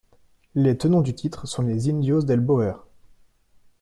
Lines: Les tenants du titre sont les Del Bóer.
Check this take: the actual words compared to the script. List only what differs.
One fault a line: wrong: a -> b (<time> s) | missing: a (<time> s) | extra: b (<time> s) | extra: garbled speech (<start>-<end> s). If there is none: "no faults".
extra: Indios (1.9 s)